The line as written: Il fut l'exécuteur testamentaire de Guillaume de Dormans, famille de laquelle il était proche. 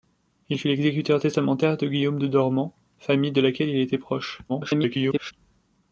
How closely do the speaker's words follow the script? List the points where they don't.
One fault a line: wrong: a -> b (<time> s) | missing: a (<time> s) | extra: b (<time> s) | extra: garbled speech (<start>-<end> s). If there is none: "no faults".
extra: garbled speech (4.5-5.3 s)